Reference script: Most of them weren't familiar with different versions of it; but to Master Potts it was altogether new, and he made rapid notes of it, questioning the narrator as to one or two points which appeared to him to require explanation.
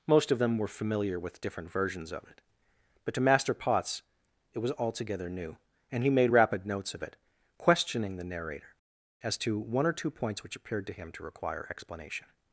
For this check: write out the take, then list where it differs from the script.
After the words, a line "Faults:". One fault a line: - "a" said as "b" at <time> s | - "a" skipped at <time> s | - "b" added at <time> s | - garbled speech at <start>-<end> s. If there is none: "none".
Most of them were familiar with different versions of it; but to Master Potts it was altogether new, and he made rapid notes of it, questioning the narrator as to one or two points which appeared to him to require explanation.
Faults:
- "weren't" said as "were" at 0.6 s